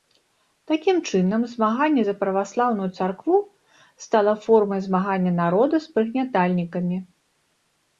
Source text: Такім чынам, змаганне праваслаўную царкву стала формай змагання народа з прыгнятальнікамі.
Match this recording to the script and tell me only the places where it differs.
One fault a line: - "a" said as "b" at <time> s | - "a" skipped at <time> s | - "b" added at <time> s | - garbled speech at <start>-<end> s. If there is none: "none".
- "за" added at 2.0 s